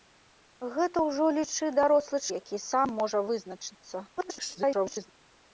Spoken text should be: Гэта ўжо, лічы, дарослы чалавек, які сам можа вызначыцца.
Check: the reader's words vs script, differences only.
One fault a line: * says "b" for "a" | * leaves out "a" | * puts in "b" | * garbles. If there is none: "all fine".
* leaves out "чалавек"
* garbles